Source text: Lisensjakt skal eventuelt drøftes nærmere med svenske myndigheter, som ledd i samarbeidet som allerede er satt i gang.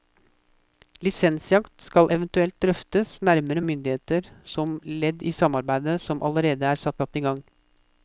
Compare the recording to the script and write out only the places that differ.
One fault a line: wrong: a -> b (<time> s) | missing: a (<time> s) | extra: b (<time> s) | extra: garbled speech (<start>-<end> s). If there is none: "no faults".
missing: med svenske (3.6 s)
extra: satt (7.0 s)